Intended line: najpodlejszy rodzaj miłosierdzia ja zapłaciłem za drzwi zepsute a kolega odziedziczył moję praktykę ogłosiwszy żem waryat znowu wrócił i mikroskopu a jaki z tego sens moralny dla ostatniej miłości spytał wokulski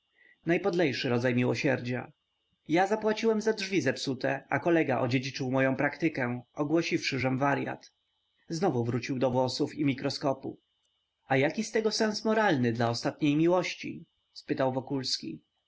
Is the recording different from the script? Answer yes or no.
yes